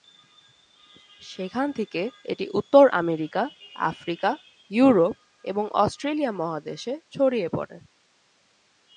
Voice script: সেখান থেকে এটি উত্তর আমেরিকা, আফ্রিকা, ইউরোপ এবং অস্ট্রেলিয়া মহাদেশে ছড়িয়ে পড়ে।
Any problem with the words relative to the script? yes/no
no